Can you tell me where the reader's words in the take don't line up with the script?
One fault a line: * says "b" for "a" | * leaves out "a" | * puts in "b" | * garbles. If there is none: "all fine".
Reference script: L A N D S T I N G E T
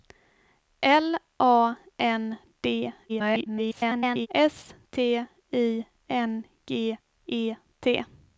* garbles